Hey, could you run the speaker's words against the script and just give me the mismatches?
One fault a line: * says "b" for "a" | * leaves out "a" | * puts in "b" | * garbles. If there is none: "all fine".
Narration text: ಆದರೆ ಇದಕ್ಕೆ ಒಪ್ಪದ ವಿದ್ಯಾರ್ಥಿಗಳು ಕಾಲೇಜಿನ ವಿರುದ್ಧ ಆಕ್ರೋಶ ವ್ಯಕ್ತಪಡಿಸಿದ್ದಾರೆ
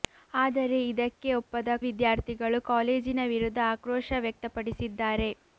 all fine